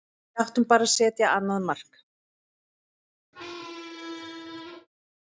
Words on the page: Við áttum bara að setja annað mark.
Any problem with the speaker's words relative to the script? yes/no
no